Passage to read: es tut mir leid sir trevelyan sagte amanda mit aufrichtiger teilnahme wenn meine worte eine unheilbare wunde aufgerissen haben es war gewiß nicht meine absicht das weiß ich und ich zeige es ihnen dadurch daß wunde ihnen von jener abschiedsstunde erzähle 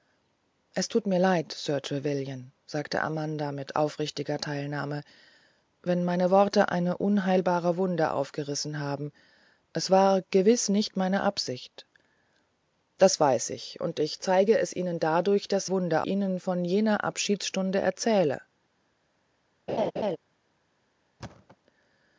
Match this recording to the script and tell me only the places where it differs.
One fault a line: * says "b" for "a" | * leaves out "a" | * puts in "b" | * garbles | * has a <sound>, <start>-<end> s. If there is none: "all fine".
* has a laugh, 19.7-20.2 s
* has a thud, 21.2-21.6 s